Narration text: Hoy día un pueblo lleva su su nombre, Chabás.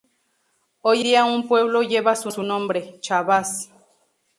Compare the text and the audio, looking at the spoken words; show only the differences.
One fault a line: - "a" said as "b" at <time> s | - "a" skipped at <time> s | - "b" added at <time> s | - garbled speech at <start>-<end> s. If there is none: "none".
none